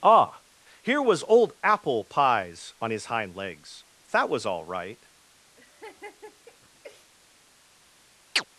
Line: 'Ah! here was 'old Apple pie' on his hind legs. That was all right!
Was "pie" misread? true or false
true